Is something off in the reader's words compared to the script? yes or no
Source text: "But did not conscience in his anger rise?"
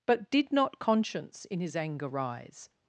no